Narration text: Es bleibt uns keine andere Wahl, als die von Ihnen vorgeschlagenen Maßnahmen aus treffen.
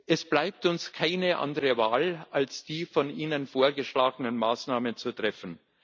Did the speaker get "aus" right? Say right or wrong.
wrong